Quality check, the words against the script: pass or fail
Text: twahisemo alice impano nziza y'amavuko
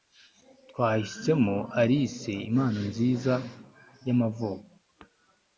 pass